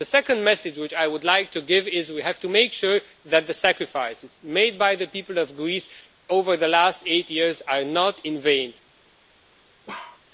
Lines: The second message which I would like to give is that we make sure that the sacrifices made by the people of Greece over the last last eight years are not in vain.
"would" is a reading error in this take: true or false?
false